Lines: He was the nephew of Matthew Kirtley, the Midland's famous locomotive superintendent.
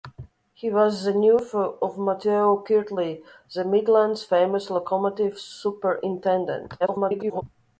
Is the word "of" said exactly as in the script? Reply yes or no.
yes